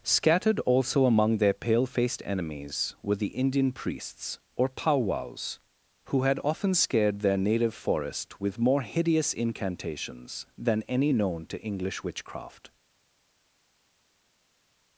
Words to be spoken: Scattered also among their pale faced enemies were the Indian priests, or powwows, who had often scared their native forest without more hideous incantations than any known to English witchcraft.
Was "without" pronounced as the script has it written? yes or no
no